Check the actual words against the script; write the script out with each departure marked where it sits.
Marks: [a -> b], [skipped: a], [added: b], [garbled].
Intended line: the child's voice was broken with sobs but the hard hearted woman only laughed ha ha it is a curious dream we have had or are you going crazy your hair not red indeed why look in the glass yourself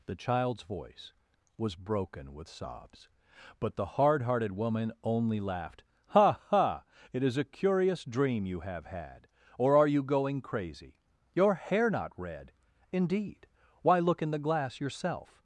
the child's voice was broken with sobs but the hard hearted woman only laughed ha ha it is a curious dream [we -> you] have had or are you going crazy your hair not red indeed why look in the glass yourself